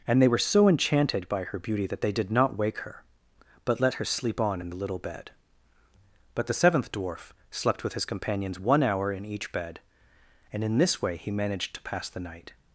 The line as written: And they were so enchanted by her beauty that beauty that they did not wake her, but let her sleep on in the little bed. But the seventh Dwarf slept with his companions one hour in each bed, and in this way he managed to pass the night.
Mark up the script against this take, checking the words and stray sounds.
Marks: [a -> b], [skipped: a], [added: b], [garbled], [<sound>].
And they were so enchanted by her beauty that [skipped: beauty that] they did not wake her, but let her sleep on in the little bed. But the seventh Dwarf slept with his companions one hour in each bed, and in this way he managed to pass the night.